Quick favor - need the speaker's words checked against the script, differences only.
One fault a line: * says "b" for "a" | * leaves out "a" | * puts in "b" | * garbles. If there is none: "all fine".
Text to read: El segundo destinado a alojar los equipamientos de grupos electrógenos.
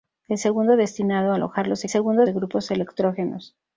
* says "segundo" for "equipamientos"